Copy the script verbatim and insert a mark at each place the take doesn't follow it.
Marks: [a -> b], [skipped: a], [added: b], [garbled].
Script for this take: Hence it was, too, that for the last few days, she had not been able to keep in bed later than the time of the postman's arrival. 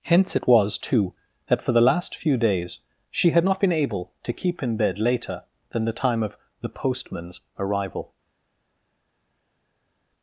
Hence it was, too, that for the last few days, she had not been able to keep in bed later than the time of the postman's arrival.